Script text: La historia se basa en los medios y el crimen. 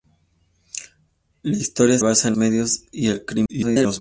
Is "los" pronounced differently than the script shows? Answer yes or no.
yes